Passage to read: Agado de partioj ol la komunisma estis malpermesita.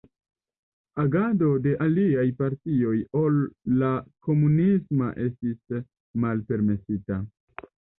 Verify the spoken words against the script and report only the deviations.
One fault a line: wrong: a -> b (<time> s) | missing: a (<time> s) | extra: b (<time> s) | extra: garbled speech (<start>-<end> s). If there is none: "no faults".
extra: aliaj (1.9 s)